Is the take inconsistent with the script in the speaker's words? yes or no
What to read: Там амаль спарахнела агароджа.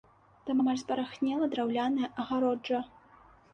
yes